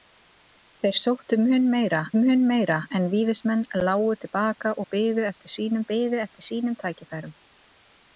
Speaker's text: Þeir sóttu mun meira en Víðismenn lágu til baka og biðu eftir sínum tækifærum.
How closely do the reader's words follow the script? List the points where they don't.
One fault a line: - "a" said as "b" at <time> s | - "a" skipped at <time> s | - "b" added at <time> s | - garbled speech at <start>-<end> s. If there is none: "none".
- "mun meira" added at 2.2 s
- "biðu eftir sínum" added at 5.9 s